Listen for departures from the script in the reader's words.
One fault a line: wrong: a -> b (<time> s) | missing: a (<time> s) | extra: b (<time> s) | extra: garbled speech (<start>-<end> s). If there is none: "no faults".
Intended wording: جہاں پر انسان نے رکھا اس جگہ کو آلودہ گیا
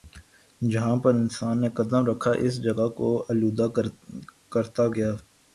extra: قدم (1.8 s)
extra: کرتا (4.5 s)